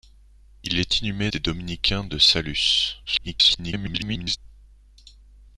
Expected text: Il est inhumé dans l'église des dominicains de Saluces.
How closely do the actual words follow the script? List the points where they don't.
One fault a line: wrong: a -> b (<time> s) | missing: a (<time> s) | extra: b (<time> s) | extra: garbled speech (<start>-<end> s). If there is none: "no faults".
missing: dans l'église (1.3 s)
extra: garbled speech (3.1-4.4 s)